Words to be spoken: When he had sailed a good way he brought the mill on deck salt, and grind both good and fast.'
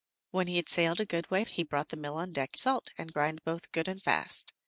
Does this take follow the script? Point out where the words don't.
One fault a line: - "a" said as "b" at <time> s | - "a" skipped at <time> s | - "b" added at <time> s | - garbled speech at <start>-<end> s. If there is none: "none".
none